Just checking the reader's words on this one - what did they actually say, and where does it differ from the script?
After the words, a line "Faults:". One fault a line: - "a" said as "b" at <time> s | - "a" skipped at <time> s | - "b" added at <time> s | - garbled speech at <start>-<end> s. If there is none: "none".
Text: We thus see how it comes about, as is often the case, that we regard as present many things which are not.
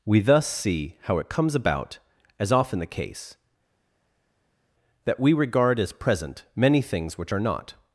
We thus see how it comes about, as often the case, that we regard as present many things which are not.
Faults:
- "is" skipped at 2.5 s